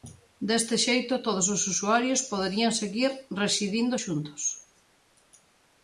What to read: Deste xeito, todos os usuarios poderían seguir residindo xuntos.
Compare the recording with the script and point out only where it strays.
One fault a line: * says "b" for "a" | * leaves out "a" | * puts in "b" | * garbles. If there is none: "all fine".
all fine